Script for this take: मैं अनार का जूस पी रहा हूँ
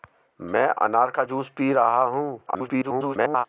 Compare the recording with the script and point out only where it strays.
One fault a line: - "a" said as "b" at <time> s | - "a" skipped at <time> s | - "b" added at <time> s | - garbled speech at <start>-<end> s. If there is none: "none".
- garbled speech at 2.5-3.4 s